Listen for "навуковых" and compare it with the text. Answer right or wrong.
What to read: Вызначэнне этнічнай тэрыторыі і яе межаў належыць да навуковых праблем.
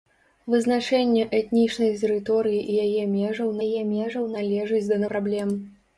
wrong